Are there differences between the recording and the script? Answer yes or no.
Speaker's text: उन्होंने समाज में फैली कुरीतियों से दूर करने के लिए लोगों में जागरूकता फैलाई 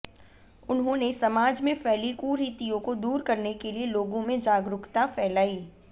yes